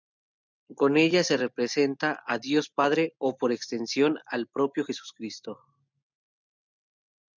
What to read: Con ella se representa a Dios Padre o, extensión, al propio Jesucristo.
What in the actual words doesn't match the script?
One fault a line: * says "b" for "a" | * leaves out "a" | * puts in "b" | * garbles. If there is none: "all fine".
* puts in "por"